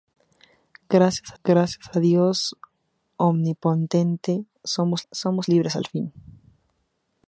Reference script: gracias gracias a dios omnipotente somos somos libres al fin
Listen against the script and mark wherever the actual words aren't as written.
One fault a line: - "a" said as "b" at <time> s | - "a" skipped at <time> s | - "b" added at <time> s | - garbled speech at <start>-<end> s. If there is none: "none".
none